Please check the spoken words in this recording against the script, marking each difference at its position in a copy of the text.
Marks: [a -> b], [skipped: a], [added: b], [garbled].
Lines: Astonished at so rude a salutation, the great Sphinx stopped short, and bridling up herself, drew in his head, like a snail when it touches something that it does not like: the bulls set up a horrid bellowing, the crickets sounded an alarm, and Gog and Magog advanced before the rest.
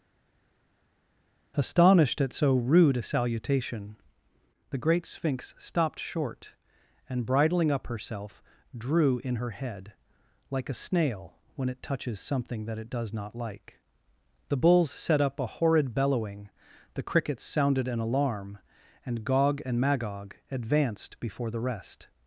Astonished at so rude a salutation, the great Sphinx stopped short, and bridling up herself, drew in [his -> her] head, like a snail when it touches something that it does not like: the bulls set up a horrid bellowing, the crickets sounded an alarm, and Gog and Magog advanced before the rest.